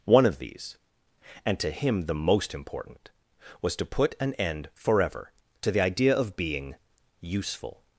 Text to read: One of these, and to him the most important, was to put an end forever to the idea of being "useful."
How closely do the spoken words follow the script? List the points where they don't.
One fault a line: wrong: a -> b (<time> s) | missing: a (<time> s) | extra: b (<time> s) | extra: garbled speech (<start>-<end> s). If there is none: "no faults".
no faults